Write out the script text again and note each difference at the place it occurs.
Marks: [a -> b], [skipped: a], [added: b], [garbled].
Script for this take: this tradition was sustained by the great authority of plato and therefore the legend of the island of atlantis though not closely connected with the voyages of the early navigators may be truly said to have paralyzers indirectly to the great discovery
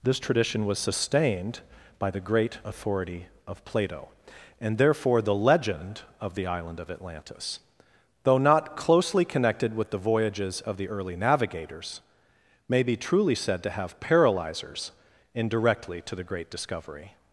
this tradition was sustained by the great authority of plato and therefore the legend of the island of atlantis though not closely connected with the voyages of the early navigators may be truly said to have paralyzers indirectly to the great discovery